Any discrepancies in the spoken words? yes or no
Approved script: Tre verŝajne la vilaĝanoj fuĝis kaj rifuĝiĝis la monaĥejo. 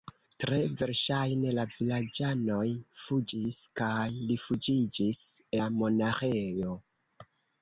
no